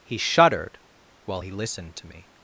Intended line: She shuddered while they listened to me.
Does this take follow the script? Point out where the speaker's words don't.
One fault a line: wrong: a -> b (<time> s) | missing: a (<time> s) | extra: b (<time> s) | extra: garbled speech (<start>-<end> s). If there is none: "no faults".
wrong: She -> He (0.0 s)
wrong: they -> he (1.4 s)